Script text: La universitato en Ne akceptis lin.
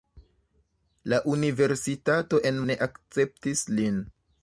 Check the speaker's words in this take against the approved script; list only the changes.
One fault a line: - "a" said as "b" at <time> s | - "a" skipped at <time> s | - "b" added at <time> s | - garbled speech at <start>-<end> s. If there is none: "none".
none